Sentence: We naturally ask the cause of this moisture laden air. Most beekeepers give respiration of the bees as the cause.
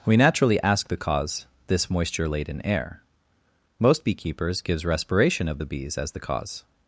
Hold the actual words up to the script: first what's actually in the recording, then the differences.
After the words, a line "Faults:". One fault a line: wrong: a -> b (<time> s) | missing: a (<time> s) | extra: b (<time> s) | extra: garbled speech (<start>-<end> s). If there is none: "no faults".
We naturally ask the cause this moisture laden air. Most beekeepers gives respiration of the bees as the cause.
Faults:
missing: of (1.4 s)
wrong: give -> gives (4.6 s)